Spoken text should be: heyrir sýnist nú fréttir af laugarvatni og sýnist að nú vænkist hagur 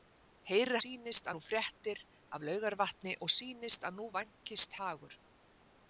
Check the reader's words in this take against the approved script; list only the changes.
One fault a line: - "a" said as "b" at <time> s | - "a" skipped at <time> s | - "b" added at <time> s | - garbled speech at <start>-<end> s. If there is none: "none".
none